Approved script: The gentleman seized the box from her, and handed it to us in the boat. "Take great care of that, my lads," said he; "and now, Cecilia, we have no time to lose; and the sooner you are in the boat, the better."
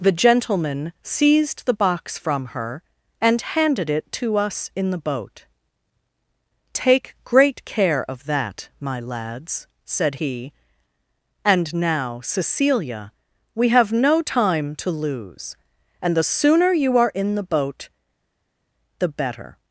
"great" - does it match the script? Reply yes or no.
yes